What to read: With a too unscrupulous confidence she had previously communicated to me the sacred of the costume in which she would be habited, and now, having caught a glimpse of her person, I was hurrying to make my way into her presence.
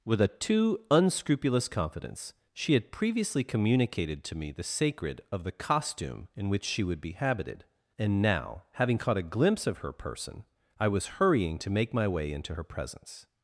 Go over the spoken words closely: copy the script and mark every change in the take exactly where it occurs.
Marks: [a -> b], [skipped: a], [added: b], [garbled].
With a too unscrupulous confidence she had previously communicated to me the sacred of the costume in which she would be habited, and now, having caught a glimpse of her person, I was hurrying to make my way into her presence.